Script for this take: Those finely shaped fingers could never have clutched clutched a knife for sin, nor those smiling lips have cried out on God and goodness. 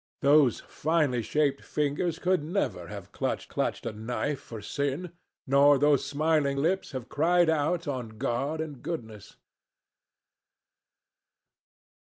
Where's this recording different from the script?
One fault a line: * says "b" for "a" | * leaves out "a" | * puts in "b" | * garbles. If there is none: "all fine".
all fine